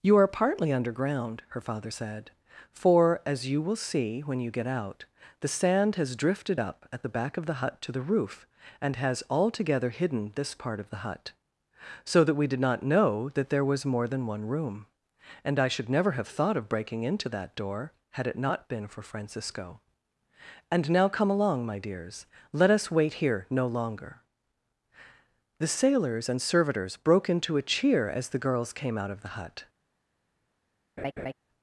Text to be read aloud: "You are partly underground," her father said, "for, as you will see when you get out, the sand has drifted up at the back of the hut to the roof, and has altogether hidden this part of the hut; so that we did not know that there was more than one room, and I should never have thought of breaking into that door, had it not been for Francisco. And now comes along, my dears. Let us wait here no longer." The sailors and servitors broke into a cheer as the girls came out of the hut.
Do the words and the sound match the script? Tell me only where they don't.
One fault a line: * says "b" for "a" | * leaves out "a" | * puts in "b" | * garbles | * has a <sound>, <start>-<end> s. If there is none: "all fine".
* says "come" for "comes"
* has a laugh, 31.0-31.3 s